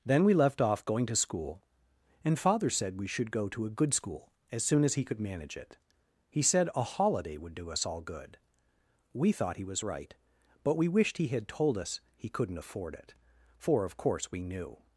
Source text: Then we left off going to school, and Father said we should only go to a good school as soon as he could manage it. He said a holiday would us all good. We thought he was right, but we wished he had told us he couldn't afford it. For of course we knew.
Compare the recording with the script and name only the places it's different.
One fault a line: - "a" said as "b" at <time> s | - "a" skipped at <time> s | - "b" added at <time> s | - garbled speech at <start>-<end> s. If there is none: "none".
- "only" skipped at 3.3 s
- "do" added at 7.5 s